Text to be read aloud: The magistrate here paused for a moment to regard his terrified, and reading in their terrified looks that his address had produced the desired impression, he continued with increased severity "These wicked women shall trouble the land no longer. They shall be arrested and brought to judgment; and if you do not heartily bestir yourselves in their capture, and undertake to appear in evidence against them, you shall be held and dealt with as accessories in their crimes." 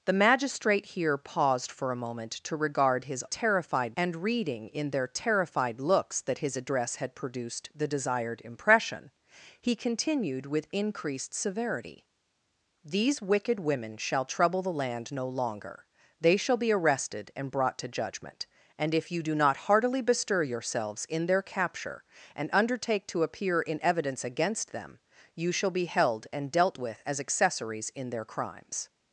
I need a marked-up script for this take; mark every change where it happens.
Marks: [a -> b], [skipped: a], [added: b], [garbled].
The magistrate here paused for a moment to regard his terrified, and reading in their terrified looks that his address had produced the desired impression, he continued with increased severity "These wicked women shall trouble the land no longer. They shall be arrested and brought to judgment; and if you do not heartily bestir yourselves in their capture, and undertake to appear in evidence against them, you shall be held and dealt with as accessories in their crimes."